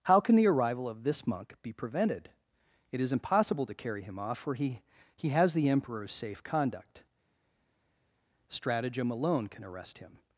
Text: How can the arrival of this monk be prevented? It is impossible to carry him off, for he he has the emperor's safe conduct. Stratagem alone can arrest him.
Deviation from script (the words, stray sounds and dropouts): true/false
false